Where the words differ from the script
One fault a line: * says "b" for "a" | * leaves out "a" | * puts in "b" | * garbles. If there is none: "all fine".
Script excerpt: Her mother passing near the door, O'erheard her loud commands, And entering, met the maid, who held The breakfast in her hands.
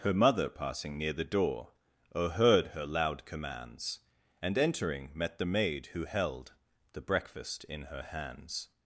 all fine